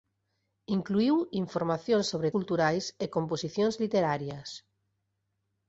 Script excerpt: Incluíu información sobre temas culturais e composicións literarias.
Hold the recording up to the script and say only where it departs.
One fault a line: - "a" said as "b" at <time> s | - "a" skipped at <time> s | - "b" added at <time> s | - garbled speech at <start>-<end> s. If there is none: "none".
- "temas" skipped at 2.3 s